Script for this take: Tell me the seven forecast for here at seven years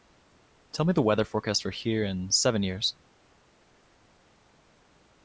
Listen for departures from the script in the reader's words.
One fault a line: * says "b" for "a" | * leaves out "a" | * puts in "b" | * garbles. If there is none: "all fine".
* says "weather" for "seven"
* says "in" for "at"